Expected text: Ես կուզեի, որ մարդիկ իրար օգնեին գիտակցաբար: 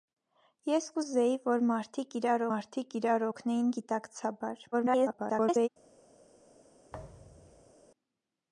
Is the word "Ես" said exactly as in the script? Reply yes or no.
yes